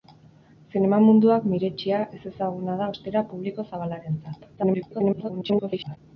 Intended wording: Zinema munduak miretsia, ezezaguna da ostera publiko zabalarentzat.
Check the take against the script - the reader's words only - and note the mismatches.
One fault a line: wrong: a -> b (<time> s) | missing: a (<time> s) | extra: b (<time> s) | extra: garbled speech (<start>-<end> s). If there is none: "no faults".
extra: garbled speech (4.6-6.0 s)